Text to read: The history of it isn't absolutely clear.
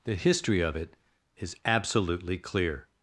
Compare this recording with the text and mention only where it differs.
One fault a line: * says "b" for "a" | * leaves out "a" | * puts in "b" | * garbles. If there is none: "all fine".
* says "is" for "isn't"